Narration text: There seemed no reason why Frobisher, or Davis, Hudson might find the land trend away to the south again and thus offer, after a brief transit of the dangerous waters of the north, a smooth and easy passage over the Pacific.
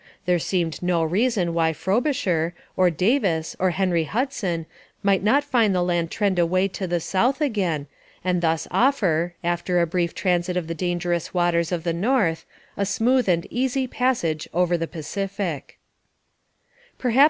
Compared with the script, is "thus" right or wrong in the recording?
right